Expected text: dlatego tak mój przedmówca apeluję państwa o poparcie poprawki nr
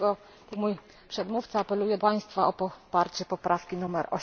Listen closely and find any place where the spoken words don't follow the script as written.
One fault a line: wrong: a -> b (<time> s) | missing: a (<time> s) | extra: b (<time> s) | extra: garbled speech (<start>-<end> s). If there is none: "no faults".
no faults